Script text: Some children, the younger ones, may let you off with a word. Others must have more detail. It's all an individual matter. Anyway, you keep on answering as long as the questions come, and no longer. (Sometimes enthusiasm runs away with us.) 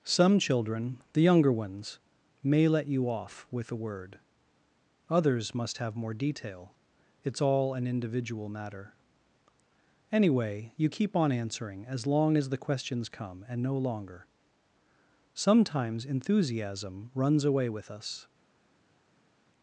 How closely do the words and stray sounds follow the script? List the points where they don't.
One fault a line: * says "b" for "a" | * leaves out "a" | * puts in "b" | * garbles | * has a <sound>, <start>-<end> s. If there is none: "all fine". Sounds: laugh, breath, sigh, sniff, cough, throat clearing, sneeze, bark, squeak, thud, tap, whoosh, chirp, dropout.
all fine